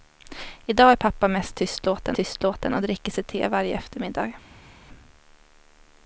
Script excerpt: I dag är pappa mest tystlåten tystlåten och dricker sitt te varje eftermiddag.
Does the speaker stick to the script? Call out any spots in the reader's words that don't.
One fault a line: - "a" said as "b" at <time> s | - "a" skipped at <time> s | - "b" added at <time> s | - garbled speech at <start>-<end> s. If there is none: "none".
none